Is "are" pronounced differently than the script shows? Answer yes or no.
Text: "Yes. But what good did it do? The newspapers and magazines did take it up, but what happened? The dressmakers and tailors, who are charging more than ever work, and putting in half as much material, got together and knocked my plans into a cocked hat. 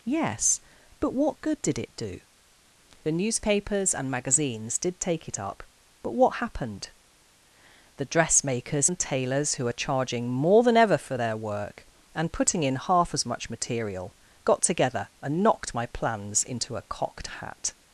no